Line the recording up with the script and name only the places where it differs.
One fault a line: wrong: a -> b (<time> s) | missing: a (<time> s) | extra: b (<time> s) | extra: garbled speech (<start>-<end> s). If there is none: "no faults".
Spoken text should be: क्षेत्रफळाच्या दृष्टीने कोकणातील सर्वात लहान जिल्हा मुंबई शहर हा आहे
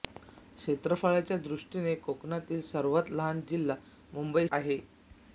missing: शहर हा (4.5 s)